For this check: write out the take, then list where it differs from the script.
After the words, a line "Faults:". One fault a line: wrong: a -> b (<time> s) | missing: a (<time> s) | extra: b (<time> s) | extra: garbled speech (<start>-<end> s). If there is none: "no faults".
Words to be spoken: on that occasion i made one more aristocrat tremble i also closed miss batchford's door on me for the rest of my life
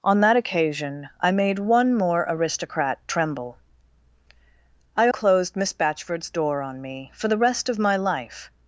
on that occasion i made one more aristocrat tremble i closed miss batchford's door on me for the rest of my life
Faults:
missing: also (5.1 s)